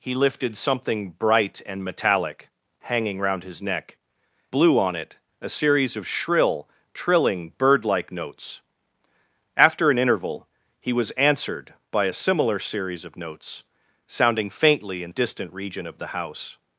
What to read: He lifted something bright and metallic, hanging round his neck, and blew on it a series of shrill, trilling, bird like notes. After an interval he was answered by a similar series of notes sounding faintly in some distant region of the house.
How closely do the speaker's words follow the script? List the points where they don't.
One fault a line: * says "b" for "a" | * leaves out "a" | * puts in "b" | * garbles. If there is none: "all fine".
* leaves out "and"
* leaves out "some"